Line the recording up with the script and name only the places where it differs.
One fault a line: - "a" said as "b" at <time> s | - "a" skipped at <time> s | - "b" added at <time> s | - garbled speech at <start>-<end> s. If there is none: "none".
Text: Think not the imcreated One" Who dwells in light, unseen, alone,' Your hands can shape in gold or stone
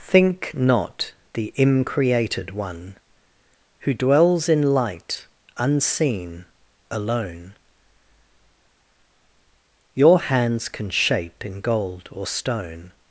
none